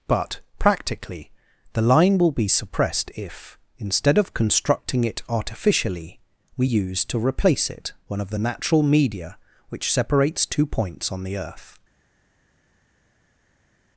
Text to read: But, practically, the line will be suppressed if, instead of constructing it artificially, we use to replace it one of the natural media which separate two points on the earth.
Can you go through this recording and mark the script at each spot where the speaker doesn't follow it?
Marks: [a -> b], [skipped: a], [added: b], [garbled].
But, practically, the line will be suppressed if, instead of constructing it artificially, we use to replace it one of the natural media which [separate -> separates] two points on the earth.